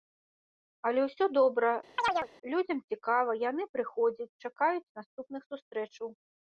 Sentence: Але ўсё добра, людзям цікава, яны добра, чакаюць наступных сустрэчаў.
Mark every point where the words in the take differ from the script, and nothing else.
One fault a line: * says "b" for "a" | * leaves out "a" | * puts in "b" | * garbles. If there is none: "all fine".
* says "прыходзяць" for "добра"